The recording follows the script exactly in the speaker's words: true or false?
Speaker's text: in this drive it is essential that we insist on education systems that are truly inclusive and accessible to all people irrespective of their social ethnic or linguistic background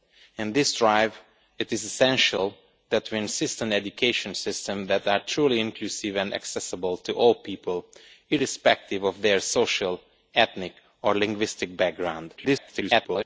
false